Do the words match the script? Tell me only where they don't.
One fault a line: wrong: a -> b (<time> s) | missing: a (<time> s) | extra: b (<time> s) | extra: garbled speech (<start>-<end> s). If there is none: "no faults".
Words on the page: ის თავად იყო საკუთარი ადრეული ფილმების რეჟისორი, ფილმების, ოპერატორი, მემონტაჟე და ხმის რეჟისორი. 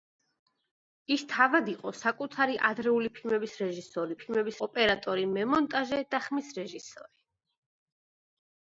no faults